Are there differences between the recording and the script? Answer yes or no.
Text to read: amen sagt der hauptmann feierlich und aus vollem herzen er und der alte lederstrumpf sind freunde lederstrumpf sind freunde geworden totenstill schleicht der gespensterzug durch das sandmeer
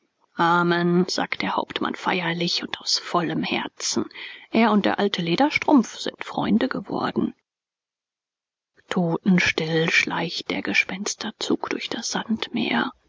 yes